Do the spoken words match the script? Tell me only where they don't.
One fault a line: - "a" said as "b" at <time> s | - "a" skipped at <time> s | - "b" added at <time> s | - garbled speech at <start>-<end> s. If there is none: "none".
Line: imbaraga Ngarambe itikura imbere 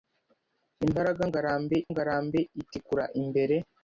- "Ngarambe" added at 1.9 s